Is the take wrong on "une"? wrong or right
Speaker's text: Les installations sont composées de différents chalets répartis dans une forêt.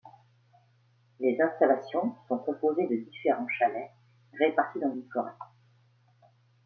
right